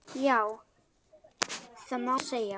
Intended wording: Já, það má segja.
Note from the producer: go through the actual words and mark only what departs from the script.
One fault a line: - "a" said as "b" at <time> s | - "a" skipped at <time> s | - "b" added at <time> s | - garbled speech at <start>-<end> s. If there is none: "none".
none